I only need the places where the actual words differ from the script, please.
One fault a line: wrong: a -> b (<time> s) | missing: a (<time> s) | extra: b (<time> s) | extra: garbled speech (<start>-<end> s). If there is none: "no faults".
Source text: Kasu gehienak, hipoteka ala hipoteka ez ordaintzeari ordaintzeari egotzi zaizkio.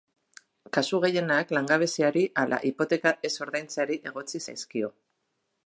wrong: hipoteka -> langabeziari (1.6 s)
missing: ordaintzeari (4.0 s)